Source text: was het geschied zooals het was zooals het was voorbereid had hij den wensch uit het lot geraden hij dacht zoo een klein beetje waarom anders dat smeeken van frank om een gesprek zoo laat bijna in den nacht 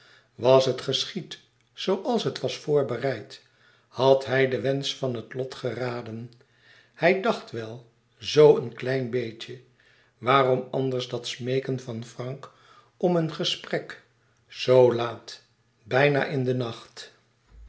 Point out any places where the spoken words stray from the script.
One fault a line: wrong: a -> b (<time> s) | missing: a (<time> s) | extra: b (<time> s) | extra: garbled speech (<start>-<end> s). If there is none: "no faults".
missing: zooals het was (2.6 s)
wrong: uit -> van (5.0 s)
extra: wel (7.5 s)